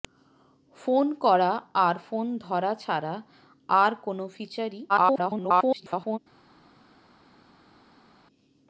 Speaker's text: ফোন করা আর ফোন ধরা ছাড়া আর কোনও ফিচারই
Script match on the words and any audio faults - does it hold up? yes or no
no